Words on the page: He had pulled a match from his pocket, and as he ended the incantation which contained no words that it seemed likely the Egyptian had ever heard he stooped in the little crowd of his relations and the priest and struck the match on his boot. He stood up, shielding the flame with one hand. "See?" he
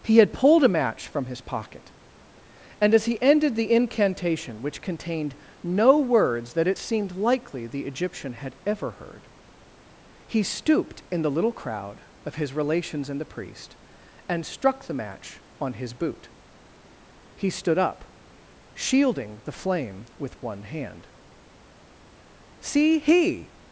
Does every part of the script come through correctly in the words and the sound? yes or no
yes